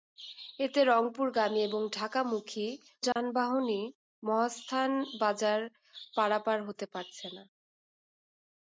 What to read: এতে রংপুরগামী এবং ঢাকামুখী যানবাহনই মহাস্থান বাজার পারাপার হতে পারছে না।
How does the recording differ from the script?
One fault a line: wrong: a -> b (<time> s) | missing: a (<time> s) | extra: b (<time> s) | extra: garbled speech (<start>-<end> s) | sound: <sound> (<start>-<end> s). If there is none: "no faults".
sound: dropout (3.1-3.2 s)